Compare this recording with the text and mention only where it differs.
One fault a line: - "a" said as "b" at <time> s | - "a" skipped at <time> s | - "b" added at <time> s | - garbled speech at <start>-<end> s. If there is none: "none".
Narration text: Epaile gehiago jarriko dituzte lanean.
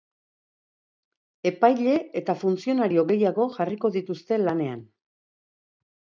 - "eta funtzionario" added at 2.2 s